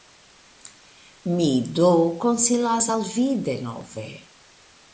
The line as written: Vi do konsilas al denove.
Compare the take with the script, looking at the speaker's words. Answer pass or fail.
fail